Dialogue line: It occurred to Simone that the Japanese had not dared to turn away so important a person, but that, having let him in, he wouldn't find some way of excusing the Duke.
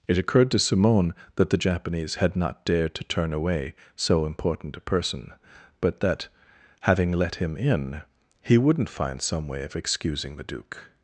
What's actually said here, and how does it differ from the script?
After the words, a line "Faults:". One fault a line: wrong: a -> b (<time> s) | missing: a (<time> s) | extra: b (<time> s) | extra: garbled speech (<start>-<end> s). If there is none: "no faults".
It occurred to Simone that the Japanese had not dared to turn away so important a person, but that, having let him in, he wouldn't find some way of excusing the Duke.
Faults:
no faults